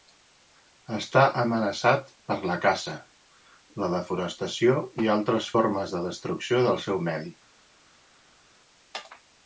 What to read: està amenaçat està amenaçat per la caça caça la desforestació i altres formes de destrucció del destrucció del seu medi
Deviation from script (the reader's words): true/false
true